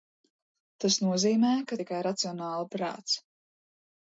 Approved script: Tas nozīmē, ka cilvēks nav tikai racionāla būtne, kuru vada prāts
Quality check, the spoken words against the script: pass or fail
fail